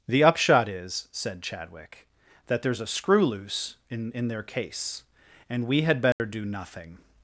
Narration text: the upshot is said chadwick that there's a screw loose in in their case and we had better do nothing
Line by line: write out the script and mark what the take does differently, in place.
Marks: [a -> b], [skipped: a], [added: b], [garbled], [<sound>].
the upshot is said chadwick that there's a screw loose in in their case and we had better [dropout] do nothing